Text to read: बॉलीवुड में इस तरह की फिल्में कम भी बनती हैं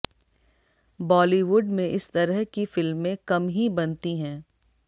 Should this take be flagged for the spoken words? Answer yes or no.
yes